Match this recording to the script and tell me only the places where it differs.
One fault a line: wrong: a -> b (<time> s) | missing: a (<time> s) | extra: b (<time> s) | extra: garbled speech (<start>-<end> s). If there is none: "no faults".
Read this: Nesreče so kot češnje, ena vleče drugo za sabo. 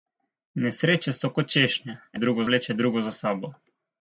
wrong: ena -> drugo (2.2 s)